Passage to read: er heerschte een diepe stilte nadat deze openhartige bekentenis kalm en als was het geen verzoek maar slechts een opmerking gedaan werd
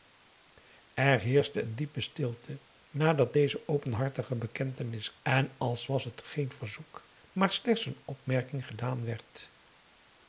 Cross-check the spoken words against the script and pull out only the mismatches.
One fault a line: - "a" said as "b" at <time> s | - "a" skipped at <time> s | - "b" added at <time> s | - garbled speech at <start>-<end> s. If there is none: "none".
- "kalm" skipped at 5.2 s